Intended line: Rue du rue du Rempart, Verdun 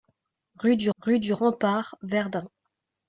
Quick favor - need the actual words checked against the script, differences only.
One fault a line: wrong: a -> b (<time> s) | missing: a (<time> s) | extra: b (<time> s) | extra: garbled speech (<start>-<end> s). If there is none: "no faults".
no faults